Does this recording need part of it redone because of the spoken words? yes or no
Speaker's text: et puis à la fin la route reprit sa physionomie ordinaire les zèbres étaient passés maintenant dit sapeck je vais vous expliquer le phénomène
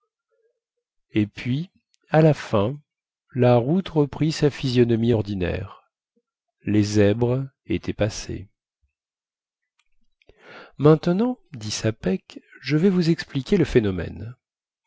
no